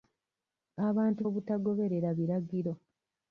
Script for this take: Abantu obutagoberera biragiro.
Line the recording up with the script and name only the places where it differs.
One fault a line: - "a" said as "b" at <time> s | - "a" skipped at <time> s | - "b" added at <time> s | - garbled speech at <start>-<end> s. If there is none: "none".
none